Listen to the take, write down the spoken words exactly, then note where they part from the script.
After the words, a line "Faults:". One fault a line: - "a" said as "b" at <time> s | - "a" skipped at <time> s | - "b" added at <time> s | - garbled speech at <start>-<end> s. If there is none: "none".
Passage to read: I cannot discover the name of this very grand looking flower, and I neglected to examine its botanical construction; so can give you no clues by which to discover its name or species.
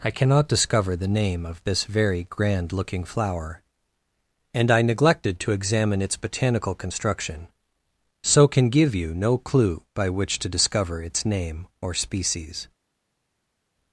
I cannot discover the name of this very grand looking flower, and I neglected to examine its botanical construction; so can give you no clue by which to discover its name or species.
Faults:
- "clues" said as "clue" at 9.4 s